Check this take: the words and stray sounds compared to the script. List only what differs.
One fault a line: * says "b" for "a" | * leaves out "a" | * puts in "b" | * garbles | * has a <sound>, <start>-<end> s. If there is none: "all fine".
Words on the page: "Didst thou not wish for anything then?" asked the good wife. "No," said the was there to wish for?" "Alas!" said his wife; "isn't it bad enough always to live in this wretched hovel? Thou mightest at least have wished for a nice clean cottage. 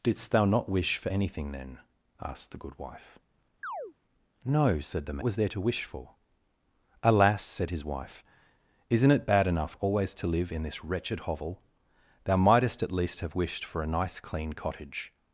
* has a chirp, 3.6-3.9 s